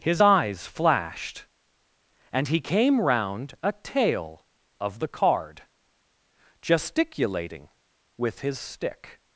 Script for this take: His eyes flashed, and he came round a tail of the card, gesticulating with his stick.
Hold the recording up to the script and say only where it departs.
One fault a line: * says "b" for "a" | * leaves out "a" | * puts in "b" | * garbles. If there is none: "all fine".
all fine